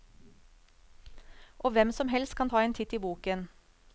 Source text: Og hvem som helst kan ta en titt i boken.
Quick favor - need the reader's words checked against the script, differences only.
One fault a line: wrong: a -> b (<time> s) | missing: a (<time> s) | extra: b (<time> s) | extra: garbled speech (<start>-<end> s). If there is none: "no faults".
no faults